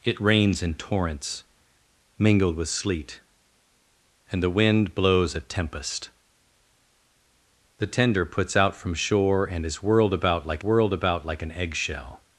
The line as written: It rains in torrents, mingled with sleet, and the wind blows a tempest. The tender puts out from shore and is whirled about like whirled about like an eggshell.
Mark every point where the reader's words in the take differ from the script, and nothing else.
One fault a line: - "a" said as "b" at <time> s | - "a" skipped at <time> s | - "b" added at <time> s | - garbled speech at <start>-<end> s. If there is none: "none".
none